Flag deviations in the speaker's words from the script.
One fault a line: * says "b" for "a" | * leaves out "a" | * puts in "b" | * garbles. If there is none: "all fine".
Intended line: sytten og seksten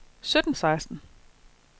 all fine